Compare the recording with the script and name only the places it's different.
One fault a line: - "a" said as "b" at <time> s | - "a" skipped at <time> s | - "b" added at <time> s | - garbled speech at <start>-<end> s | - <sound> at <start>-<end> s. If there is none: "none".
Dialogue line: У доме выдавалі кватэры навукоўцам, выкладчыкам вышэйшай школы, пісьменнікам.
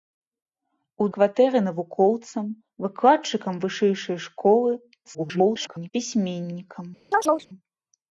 - "доме выдавалі" skipped at 1.1 s
- garbled speech at 5.0-5.9 s
- chirp at 7.1-7.5 s